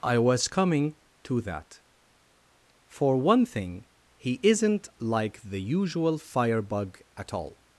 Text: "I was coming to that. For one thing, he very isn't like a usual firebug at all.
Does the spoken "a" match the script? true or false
false